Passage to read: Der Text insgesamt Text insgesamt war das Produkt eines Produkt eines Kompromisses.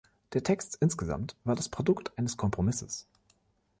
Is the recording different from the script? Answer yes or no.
yes